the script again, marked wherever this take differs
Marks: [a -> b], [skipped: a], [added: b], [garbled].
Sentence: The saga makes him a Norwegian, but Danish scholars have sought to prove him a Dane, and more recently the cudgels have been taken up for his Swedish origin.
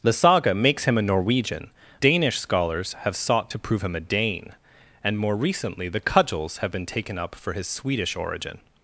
The saga makes him a Norwegian, [skipped: but] Danish scholars have sought to prove him a Dane, and more recently the cudgels have been taken up for his Swedish origin.